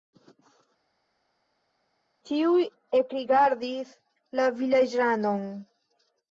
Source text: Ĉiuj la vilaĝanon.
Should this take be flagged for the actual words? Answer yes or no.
yes